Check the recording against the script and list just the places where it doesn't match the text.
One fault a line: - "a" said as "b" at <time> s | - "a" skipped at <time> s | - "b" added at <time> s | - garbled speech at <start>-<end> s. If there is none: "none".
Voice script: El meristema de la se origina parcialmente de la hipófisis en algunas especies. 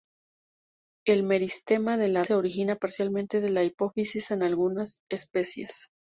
none